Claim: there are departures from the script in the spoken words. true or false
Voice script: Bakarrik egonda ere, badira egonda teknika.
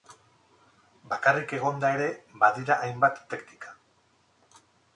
true